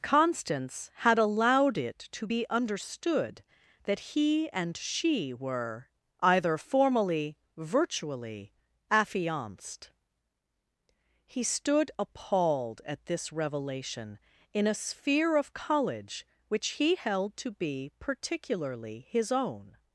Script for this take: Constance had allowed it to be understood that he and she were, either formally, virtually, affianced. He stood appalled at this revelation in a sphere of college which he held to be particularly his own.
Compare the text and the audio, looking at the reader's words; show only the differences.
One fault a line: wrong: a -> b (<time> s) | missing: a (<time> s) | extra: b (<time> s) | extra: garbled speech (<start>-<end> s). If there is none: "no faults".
no faults